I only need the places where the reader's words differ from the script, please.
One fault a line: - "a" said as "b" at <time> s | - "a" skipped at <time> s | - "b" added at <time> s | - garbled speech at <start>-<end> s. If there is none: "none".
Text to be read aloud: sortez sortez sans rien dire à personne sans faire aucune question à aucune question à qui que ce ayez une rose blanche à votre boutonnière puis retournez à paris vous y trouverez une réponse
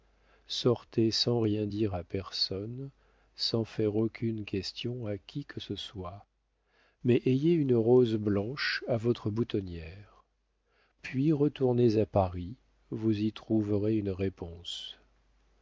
- "sortez" skipped at 1.1 s
- "aucune question à" skipped at 5.2 s
- "soit mais" added at 5.8 s